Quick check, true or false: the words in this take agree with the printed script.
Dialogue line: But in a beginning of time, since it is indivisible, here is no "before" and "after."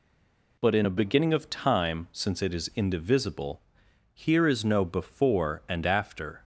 true